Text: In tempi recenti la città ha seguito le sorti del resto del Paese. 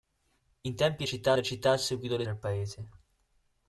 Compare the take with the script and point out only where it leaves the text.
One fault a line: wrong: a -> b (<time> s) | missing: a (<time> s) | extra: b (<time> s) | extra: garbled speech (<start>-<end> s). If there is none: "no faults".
wrong: recenti -> città (1.0 s)
missing: sorti del resto (2.2 s)